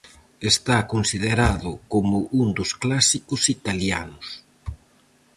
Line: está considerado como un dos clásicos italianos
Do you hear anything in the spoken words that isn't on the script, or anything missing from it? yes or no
no